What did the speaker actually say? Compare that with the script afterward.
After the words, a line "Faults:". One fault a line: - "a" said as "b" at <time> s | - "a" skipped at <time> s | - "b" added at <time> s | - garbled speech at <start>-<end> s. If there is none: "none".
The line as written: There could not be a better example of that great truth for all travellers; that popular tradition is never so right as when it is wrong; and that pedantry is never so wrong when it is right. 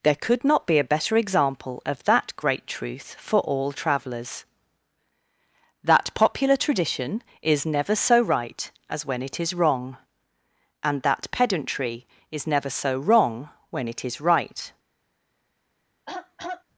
There could not be a better example of that great truth for all travellers; that popular tradition is never so right as when it is wrong; and that pedantry is never so wrong when it is right.
Faults:
none